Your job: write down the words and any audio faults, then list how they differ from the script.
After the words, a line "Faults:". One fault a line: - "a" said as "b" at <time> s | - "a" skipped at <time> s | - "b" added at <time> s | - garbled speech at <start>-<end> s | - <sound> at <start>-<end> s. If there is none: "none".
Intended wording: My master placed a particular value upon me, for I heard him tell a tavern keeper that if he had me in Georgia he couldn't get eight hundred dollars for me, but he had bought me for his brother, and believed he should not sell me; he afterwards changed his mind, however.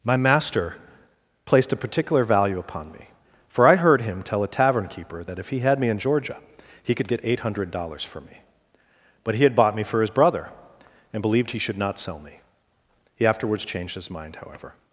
My master placed a particular value upon me, for I heard him tell a tavern keeper that if he had me in Georgia he could get eight hundred dollars for me, but he had bought me for his brother, and believed he should not sell me; he afterwards changed his mind, however.
Faults:
- "couldn't" said as "could" at 7.0 s